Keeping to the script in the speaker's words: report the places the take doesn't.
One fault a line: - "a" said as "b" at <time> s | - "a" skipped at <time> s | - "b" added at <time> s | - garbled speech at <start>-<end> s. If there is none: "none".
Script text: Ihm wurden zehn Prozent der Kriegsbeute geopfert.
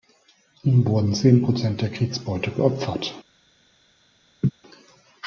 none